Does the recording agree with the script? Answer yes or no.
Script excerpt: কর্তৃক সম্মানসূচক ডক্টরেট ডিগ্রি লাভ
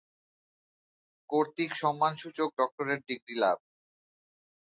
yes